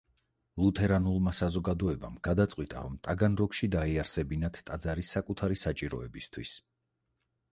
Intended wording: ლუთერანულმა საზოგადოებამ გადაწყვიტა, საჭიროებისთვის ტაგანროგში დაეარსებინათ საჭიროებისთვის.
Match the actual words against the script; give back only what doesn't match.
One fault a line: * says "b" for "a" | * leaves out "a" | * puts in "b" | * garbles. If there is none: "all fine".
* says "რომ" for "საჭიროებისთვის"
* puts in "ტაძარი საკუთარი"